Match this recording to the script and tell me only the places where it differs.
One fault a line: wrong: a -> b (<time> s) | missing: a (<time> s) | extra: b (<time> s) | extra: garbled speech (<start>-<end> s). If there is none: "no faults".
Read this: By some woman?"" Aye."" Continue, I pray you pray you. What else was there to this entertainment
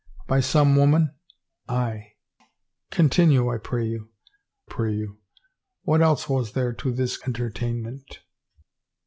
no faults